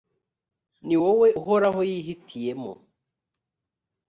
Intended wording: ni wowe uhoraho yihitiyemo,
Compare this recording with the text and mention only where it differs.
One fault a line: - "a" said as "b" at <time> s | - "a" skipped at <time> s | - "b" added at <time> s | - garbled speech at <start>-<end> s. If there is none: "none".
none